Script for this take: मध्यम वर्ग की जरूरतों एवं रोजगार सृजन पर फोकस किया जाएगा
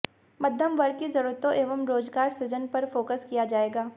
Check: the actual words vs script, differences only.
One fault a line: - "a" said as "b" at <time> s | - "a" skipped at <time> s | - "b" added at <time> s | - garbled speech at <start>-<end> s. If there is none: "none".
none